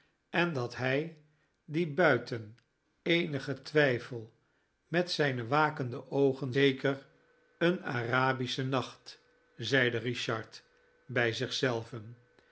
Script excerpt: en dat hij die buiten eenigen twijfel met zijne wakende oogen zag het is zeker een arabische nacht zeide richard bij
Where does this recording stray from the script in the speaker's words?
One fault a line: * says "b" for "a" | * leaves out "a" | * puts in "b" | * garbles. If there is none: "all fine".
* leaves out "zag het is"